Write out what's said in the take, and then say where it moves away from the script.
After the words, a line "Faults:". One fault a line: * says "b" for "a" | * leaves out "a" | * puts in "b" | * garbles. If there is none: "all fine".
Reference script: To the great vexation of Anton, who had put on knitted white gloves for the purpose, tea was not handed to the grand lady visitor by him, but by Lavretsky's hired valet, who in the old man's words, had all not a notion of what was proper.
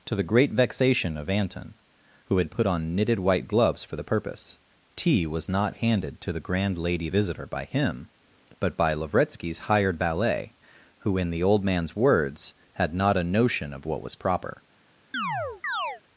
To the great vexation of Anton, who had put on knitted white gloves for the purpose, tea was not handed to the grand lady visitor by him, but by Lavretsky's hired valet, who in the old man's words, had not a notion of what was proper.
Faults:
* leaves out "all"